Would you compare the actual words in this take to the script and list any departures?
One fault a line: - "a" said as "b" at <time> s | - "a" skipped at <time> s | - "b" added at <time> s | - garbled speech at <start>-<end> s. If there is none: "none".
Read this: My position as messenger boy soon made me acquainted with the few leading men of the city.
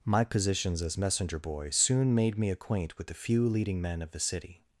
- "position" said as "positions" at 0.2 s
- "acquainted" said as "acquaint" at 2.5 s